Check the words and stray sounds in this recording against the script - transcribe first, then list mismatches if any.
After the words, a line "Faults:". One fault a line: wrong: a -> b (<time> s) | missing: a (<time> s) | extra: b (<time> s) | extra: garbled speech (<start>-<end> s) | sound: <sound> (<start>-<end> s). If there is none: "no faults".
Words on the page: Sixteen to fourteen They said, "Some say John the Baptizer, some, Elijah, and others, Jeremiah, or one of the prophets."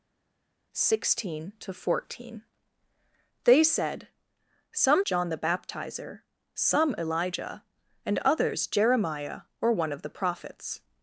Sixteen to fourteen They said, "Some John the Baptizer, some, Elijah, and others, Jeremiah, or one of the prophets."
Faults:
missing: say (5.0 s)